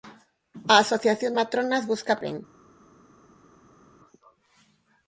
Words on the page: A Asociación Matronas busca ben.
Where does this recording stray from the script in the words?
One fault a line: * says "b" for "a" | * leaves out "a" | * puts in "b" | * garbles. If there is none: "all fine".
all fine